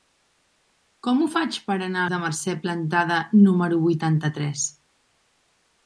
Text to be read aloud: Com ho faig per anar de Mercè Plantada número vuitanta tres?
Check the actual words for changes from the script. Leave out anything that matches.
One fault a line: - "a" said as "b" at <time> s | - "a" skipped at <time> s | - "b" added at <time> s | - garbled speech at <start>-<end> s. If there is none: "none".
none